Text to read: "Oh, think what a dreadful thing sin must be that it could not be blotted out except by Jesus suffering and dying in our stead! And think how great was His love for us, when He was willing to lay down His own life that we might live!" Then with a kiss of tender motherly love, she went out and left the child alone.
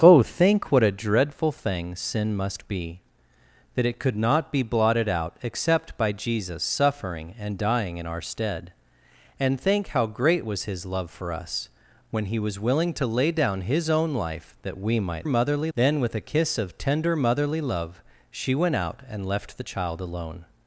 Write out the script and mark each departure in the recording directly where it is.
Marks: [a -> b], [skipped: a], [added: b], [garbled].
"Oh, think what a dreadful thing sin must be that it could not be blotted out except by Jesus suffering and dying in our stead! And think how great was His love for us, when He was willing to lay down His own life that we might [live!" -> motherly] Then with a kiss of tender motherly love, she went out and left the child alone.